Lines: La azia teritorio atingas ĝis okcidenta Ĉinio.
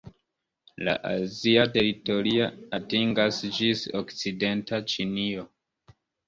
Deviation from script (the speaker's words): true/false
false